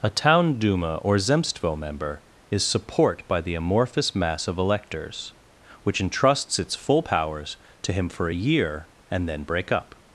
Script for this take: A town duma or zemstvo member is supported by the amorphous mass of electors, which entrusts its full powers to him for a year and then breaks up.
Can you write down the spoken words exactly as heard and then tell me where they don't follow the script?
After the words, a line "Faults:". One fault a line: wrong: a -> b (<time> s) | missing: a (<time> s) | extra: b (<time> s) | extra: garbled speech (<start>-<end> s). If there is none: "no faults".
A town duma or zemstvo member is support by the amorphous mass of electors, which entrusts its full powers to him for a year and then break up.
Faults:
wrong: supported -> support (2.6 s)
wrong: breaks -> break (9.4 s)